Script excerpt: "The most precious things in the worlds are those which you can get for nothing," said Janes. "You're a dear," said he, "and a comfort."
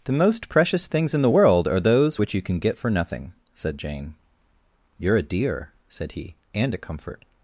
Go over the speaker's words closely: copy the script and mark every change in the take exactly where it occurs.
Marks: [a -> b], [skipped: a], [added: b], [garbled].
"The most precious things in the [worlds -> world] are those which you can get for nothing," said [Janes. -> Jane] "You're a dear," said he, "and a comfort."